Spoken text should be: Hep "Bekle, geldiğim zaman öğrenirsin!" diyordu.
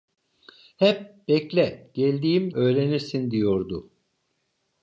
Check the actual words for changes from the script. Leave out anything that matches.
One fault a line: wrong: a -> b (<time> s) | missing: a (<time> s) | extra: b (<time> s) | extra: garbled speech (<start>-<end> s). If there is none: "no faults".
missing: zaman (2.5 s)